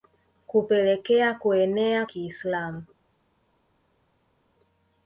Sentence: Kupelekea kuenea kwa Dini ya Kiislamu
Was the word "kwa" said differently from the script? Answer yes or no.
yes